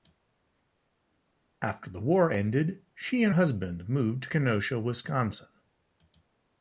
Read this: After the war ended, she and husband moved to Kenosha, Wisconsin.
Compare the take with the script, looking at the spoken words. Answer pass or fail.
pass